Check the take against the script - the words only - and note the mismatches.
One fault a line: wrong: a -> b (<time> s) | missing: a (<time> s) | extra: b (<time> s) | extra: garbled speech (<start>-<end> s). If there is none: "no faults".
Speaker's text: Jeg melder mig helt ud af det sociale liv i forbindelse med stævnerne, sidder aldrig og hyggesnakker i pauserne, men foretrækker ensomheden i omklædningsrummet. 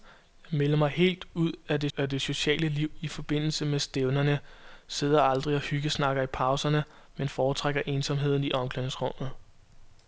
extra: af det (2.0 s)